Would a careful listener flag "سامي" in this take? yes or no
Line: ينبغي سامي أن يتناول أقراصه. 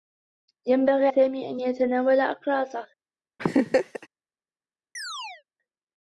no